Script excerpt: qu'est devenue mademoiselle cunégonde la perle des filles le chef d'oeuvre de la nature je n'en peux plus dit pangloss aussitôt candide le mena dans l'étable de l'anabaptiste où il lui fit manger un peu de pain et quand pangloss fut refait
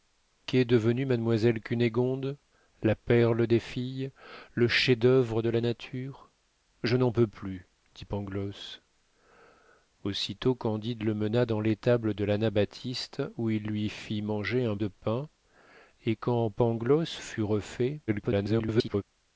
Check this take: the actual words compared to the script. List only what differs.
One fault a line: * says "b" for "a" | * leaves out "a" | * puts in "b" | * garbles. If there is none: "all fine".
* leaves out "peu"
* garbles